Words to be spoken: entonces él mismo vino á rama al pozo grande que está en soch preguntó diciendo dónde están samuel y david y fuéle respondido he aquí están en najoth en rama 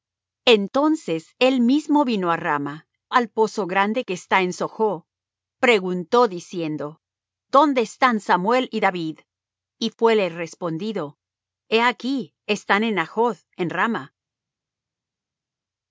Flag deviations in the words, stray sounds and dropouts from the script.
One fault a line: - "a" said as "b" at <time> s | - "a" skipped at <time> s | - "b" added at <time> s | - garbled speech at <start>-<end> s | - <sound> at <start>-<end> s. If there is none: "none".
none